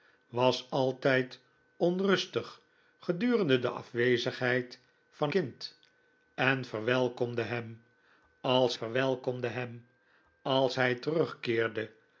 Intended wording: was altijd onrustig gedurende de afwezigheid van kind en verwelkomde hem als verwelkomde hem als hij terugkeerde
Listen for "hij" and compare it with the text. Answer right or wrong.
right